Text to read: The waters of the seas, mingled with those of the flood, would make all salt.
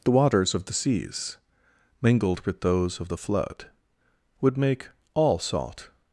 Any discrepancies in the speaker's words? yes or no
no